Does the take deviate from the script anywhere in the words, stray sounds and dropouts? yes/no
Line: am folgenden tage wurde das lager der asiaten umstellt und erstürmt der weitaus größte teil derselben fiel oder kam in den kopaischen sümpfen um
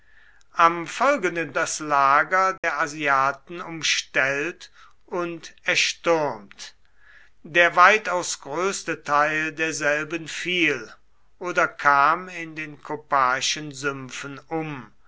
yes